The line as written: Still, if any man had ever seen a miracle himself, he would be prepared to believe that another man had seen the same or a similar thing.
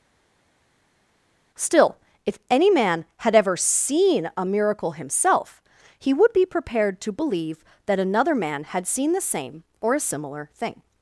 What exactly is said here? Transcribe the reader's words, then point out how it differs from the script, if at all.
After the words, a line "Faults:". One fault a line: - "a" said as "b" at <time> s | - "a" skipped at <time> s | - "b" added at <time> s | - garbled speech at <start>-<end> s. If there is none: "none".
Still, if any man had ever seen a miracle himself, he would be prepared to believe that another man had seen the same or a similar thing.
Faults:
none